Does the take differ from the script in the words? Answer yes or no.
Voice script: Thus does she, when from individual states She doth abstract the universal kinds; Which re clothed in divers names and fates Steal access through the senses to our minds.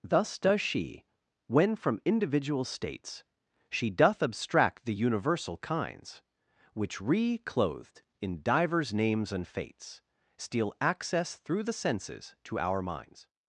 no